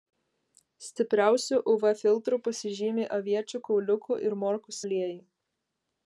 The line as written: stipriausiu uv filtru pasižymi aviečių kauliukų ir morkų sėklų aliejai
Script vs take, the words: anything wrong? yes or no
yes